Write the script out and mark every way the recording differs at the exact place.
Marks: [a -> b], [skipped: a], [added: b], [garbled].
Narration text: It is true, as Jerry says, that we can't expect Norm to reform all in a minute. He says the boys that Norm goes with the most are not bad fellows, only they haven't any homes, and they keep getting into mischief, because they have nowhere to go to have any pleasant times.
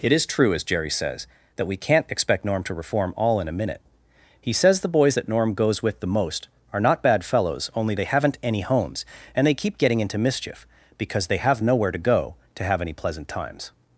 It is true, as Jerry says, that we can't expect Norm to reform all in a minute. He says the boys that Norm goes with the most are not bad fellows, only they haven't any homes, and they keep getting into mischief, because they have nowhere to go to have any pleasant times.